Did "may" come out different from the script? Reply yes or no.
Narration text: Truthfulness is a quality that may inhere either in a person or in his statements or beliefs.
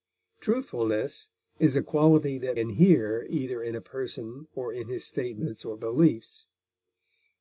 yes